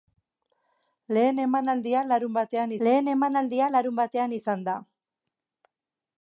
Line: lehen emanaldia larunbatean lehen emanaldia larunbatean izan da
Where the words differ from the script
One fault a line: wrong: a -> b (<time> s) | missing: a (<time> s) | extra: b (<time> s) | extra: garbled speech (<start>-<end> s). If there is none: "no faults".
no faults